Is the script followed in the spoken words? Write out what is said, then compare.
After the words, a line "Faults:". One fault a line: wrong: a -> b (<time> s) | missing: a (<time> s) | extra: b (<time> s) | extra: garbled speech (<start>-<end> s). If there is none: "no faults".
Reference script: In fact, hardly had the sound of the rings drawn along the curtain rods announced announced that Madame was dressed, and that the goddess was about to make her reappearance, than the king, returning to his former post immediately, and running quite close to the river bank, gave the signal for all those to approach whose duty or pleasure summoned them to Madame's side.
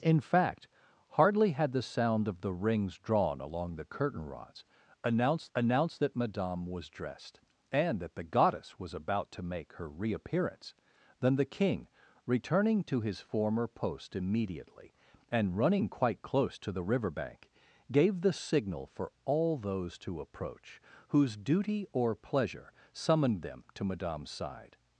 In fact, hardly had the sound of the rings drawn along the curtain rods announced announced that Madame was dressed, and that the goddess was about to make her reappearance, than the king, returning to his former post immediately, and running quite close to the river bank, gave the signal for all those to approach whose duty or pleasure summoned them to Madame's side.
Faults:
no faults